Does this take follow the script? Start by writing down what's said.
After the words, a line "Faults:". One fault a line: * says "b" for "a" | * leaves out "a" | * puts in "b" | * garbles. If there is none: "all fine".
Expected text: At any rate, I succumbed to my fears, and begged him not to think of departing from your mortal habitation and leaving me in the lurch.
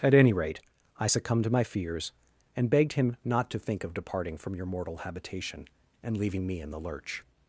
At any rate, I succumbed to my fears, and begged him not to think of departing from your mortal habitation and leaving me in the lurch.
Faults:
all fine